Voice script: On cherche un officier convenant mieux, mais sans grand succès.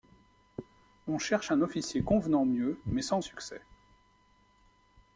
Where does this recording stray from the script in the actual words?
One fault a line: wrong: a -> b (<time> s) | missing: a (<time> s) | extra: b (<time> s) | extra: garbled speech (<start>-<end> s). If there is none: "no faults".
missing: grand (3.2 s)